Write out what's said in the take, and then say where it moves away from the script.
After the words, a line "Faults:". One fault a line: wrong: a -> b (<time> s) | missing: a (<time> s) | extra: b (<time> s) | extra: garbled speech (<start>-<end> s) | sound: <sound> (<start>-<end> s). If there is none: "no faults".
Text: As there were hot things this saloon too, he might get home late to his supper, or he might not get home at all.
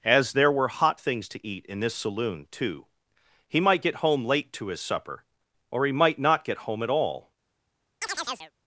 As there were hot things to eat in this saloon too, he might get home late to his supper, or he might not get home at all.
Faults:
extra: to eat in (1.3 s)
sound: chirp (8.0-8.5 s)